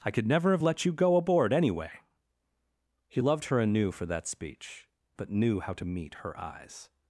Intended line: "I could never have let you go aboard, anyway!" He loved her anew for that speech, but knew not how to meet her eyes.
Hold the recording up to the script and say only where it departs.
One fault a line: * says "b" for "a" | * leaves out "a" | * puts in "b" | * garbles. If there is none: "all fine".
* leaves out "not"